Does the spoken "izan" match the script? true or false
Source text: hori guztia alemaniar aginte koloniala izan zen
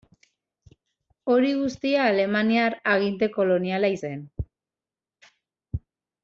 false